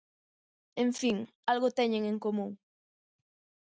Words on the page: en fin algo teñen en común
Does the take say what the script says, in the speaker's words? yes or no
yes